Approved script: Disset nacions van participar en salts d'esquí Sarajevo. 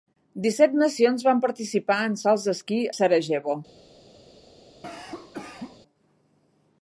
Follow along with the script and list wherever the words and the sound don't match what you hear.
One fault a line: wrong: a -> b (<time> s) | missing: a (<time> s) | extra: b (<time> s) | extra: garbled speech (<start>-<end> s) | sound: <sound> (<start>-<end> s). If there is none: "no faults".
sound: cough (4.8-5.8 s)